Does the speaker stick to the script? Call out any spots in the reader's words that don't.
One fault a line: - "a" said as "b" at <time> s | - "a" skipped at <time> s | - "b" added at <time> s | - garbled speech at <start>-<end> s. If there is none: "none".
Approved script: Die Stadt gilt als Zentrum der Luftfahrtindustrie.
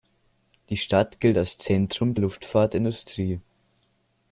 - "der" skipped at 2.1 s